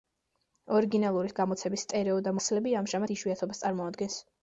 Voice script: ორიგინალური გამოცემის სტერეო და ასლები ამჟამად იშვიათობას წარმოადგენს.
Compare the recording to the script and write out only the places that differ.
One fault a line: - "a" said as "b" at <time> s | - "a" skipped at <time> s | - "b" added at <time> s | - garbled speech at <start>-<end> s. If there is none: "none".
none